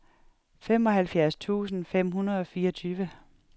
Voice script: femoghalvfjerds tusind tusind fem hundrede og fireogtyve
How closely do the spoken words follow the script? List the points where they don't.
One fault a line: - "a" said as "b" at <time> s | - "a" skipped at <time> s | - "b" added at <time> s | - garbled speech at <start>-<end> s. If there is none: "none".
- "tusind" skipped at 1.9 s